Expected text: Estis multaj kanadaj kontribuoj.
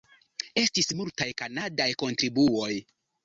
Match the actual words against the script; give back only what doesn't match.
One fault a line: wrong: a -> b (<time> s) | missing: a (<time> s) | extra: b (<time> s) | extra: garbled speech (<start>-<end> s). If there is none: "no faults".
no faults